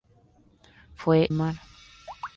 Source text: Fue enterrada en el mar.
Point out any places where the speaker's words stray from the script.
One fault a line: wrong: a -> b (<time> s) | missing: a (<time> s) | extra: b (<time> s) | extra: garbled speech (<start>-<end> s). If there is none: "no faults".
missing: enterrada en el (1.3 s)